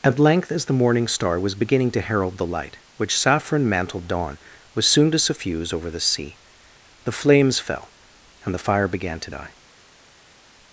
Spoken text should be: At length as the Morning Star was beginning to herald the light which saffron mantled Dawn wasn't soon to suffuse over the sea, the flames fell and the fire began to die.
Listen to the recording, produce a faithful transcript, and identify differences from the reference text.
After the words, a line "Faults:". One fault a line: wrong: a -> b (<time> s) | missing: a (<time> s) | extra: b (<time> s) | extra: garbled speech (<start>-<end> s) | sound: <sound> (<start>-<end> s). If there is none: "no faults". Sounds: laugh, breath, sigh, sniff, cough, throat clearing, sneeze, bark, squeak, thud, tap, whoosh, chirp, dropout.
At length as the Morning Star was beginning to herald the light which saffron mantled Dawn was soon to suffuse over the sea, the flames fell and the fire began to die.
Faults:
wrong: wasn't -> was (4.7 s)